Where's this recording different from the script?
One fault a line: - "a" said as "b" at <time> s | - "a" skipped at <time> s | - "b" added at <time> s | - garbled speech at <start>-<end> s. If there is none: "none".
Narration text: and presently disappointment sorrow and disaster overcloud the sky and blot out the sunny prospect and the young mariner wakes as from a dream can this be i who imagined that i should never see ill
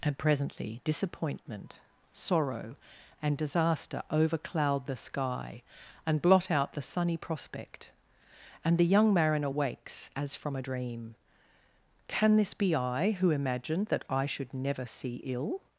none